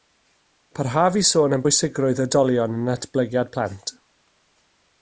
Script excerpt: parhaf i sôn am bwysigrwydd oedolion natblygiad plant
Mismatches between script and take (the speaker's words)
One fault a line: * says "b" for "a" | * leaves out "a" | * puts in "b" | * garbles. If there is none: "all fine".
* puts in "yn"